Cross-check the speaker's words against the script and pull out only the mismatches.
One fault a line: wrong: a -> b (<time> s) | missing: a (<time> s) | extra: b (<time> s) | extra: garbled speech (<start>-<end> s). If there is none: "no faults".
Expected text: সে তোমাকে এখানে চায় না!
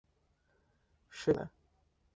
missing: তোমাকে এখানে চায় (1.3 s)